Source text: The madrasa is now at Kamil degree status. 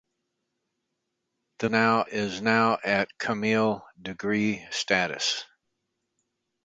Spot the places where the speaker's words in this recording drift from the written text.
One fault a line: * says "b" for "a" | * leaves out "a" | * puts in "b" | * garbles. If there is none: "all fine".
* says "now" for "madrasa"